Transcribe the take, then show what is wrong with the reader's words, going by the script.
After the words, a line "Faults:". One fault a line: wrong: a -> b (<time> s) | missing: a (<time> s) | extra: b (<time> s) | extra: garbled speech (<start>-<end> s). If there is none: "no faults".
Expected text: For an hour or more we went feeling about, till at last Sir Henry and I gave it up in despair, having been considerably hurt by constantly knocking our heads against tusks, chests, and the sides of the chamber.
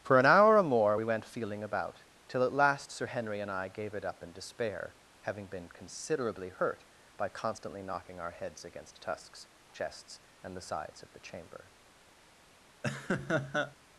For an hour or more we went feeling about, till at last Sir Henry and I gave it up in despair, having been considerably hurt by constantly knocking our heads against tusks, chests, and the sides of the chamber.
Faults:
no faults